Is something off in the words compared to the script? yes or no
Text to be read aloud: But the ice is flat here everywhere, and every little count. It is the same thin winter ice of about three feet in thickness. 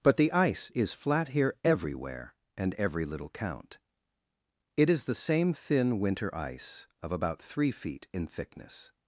no